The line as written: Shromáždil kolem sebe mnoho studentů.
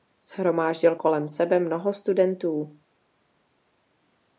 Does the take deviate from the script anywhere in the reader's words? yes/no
no